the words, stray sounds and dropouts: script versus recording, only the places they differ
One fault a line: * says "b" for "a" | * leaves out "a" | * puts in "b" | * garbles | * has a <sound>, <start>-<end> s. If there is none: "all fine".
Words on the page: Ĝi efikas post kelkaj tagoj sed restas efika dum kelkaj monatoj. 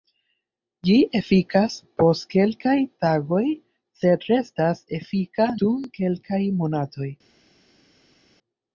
all fine